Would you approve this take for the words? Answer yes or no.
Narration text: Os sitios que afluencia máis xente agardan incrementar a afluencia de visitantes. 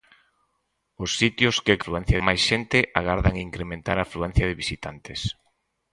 yes